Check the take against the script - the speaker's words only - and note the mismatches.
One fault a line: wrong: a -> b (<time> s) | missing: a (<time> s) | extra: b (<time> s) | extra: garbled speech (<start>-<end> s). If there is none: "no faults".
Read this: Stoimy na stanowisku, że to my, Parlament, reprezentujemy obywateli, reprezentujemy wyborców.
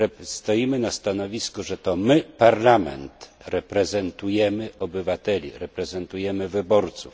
no faults